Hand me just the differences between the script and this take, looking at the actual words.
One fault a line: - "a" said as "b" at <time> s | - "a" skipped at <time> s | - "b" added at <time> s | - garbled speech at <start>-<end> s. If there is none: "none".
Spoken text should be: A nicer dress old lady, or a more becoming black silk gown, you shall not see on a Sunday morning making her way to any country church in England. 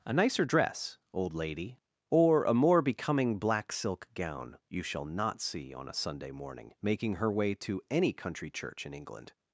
none